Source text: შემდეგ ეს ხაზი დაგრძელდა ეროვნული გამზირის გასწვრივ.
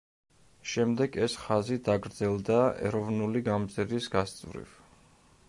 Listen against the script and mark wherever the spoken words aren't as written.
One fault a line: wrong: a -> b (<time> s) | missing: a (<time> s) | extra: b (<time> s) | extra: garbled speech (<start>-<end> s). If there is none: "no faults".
no faults